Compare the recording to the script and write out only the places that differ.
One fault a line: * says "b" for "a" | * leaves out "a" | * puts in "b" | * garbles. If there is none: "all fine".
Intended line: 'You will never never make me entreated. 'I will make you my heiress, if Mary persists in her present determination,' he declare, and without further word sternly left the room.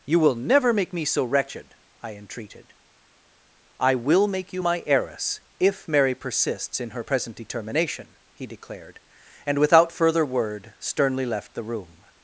* leaves out "never"
* puts in "so wretched I"
* says "declared" for "declare"